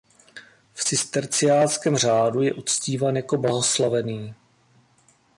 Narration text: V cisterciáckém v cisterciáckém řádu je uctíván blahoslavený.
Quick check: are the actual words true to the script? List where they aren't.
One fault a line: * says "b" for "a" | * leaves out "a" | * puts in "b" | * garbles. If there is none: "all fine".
* leaves out "v cisterciáckém"
* puts in "jako"